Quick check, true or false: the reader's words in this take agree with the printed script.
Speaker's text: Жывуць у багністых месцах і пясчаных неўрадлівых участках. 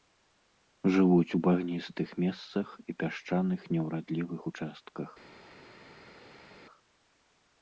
true